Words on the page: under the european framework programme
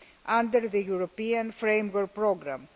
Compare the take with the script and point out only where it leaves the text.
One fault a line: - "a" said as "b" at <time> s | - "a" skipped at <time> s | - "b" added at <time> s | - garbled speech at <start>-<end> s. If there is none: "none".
none